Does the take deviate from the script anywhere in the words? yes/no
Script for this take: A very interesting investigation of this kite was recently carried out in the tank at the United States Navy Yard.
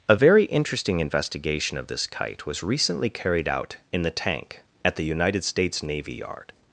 no